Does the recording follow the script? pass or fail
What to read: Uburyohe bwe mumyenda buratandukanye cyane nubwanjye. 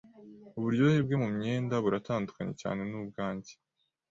pass